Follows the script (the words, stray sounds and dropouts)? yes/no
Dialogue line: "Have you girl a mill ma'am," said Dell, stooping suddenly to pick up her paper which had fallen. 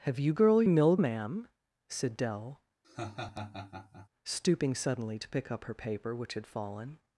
no